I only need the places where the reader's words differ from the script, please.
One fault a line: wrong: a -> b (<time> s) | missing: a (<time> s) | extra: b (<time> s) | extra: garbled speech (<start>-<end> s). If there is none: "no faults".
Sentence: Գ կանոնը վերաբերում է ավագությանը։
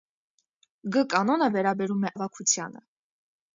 no faults